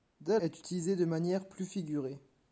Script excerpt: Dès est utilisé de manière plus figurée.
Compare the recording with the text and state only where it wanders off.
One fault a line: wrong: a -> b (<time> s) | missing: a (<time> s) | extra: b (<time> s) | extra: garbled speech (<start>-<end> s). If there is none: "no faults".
no faults